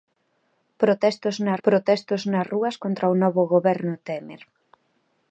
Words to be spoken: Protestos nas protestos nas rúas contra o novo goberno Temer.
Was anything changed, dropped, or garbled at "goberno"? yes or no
no